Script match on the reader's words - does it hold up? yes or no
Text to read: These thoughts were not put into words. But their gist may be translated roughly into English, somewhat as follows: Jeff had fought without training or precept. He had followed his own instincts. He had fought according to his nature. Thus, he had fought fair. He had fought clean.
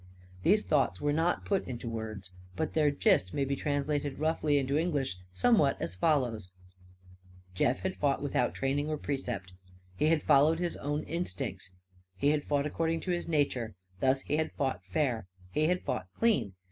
yes